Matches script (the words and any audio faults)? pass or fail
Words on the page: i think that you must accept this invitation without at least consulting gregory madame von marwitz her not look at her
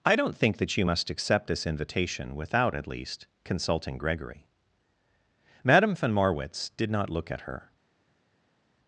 fail